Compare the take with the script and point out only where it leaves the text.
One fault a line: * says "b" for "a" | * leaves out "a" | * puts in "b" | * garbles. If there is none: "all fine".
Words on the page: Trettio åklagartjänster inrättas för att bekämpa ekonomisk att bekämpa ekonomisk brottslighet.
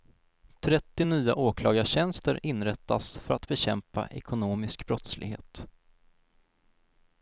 * puts in "nya"
* leaves out "att bekämpa ekonomisk"